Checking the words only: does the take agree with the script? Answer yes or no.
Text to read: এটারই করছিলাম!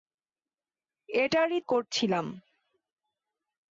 yes